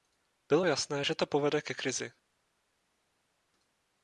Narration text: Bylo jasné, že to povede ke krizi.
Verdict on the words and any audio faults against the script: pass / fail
pass